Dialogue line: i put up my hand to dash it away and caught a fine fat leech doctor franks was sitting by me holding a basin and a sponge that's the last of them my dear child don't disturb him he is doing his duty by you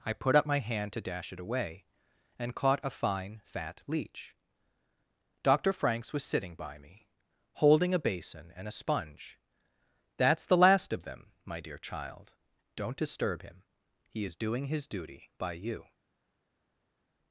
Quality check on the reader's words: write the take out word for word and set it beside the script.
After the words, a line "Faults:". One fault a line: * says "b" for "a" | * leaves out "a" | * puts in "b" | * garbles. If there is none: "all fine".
i put up my hand to dash it away and caught a fine fat leech doctor franks was sitting by me holding a basin and a sponge that's the last of them my dear child don't disturb him he is doing his duty by you
Faults:
all fine